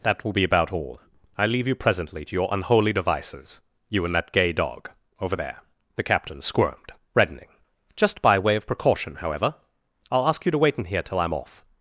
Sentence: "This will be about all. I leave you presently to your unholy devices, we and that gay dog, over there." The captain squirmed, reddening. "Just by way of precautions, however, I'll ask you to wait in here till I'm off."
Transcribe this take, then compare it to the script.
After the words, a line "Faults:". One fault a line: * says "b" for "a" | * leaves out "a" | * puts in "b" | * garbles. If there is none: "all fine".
"That will be about all. I leave you presently to your unholy devices, you and that gay dog, over there." The captain squirmed, reddening. "Just by way of precaution, however, I'll ask you to wait in here till I'm off."
Faults:
* says "That" for "This"
* says "you" for "we"
* says "precaution" for "precautions"